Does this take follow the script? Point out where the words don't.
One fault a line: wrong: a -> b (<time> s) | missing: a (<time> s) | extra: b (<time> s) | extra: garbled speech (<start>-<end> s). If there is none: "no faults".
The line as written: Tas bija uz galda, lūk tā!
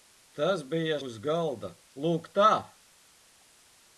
no faults